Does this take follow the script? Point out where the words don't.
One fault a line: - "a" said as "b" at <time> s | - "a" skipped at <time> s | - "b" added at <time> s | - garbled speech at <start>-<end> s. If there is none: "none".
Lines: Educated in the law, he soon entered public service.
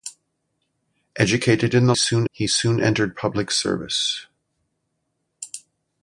- "law" said as "soon" at 1.9 s